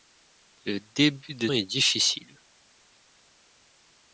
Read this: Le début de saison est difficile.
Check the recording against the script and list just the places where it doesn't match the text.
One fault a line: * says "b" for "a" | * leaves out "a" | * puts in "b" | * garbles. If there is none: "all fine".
* leaves out "saison"